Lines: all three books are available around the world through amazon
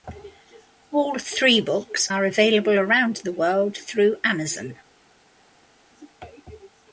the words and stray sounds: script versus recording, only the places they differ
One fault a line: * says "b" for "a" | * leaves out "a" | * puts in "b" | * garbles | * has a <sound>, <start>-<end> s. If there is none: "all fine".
all fine